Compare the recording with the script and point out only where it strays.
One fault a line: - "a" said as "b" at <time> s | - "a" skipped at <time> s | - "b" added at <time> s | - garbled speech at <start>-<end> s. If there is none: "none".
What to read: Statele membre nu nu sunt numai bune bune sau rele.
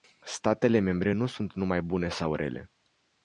- "nu" skipped at 1.3 s
- "bune" skipped at 2.1 s